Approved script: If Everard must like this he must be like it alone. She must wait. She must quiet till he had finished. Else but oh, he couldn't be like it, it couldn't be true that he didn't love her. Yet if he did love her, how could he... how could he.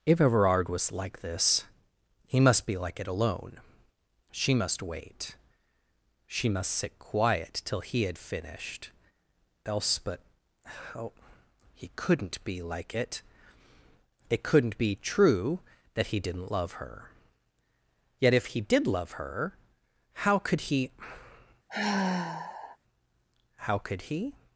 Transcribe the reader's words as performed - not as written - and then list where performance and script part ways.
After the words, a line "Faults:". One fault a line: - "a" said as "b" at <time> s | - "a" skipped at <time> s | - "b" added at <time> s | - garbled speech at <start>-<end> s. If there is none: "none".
If Everard was like this he must be like it alone. She must wait. She must sit quiet till he had finished. Else but oh, he couldn't be like it, it couldn't be true that he didn't love her. Yet if he did love her, how could he... how could he.
Faults:
- "must" said as "was" at 0.7 s
- "sit" added at 6.7 s